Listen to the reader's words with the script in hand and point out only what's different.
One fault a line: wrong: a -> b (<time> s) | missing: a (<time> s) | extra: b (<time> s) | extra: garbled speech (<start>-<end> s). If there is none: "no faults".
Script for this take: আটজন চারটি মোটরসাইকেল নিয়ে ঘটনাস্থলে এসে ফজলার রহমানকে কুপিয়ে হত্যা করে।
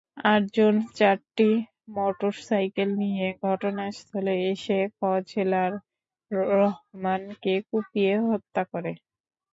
no faults